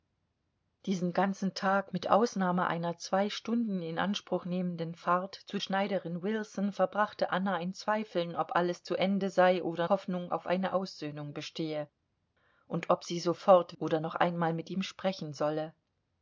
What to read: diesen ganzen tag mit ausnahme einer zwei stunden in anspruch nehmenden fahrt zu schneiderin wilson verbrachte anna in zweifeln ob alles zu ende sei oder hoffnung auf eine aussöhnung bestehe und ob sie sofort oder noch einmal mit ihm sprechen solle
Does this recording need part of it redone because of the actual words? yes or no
no